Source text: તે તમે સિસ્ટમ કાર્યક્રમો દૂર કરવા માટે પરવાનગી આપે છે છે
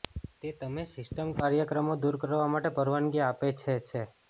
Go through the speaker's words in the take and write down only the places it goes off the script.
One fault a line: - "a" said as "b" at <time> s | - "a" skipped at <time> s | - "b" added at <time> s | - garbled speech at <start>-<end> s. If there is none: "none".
none